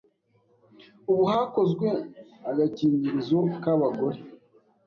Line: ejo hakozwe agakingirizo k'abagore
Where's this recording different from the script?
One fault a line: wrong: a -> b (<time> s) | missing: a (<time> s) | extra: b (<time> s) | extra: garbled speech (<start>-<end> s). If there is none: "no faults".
wrong: ejo -> ubu (1.1 s)